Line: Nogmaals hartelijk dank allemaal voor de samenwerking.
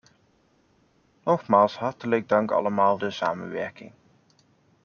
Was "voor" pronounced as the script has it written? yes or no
no